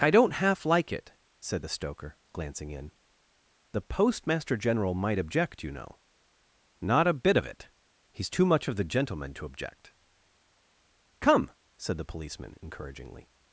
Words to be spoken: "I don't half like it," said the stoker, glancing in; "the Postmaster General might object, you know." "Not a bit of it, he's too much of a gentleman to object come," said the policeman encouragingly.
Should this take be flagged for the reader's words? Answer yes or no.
yes